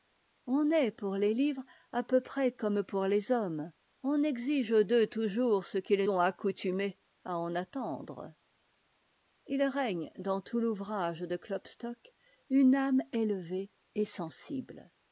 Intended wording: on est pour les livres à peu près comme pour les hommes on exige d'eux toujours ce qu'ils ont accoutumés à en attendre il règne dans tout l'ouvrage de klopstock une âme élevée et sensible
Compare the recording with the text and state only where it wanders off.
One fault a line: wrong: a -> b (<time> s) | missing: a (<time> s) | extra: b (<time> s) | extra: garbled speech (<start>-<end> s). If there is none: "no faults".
no faults